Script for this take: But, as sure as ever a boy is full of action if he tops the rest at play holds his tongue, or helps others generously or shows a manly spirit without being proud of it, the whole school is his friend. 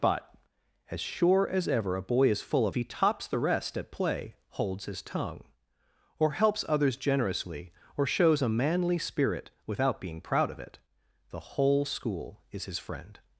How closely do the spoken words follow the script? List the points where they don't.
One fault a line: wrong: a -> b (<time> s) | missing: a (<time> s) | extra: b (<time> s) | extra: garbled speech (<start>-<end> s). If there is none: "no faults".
missing: action if (2.8 s)